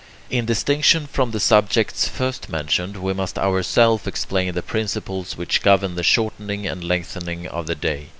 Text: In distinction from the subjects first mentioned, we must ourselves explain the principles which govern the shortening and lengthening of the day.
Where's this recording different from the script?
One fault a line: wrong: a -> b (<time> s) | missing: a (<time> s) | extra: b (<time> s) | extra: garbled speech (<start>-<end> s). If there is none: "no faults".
no faults